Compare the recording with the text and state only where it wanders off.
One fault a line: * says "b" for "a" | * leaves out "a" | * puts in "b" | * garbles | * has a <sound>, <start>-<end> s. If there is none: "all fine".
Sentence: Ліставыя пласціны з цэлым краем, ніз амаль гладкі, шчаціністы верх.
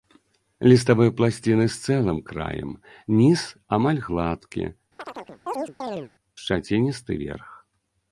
* has a chirp, 5.0-6.1 s